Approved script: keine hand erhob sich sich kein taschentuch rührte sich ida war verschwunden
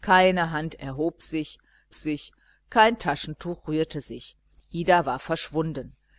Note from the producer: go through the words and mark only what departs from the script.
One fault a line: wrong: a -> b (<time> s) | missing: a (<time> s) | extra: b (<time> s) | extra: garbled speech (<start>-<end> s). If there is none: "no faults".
no faults